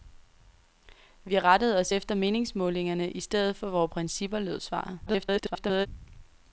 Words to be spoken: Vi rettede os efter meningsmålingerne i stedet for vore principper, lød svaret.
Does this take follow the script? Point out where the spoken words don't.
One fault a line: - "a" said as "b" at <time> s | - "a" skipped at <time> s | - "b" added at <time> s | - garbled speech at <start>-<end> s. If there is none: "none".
- garbled speech at 5.1-5.9 s